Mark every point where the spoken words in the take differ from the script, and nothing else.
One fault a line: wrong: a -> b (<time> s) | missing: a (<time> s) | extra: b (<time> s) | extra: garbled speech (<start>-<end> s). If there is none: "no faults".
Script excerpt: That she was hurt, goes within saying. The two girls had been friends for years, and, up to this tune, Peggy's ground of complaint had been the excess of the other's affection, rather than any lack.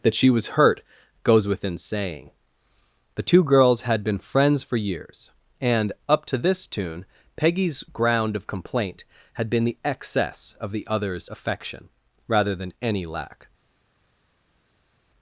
no faults